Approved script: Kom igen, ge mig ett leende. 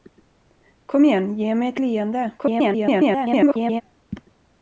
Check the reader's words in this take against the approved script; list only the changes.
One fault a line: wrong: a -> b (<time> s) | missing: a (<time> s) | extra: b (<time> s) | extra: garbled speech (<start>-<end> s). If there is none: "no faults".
extra: garbled speech (2.4-3.8 s)